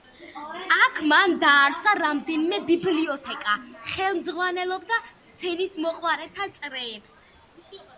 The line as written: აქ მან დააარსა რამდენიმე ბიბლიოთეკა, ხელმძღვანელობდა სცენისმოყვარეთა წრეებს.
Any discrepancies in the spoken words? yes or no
no